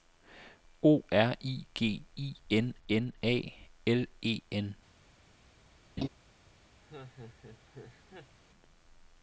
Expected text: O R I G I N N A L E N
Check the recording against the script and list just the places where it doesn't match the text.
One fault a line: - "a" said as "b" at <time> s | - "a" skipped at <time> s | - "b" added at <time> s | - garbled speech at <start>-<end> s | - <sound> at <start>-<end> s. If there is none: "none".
- laugh at 6.0-6.1 s
- laugh at 6.8-8.4 s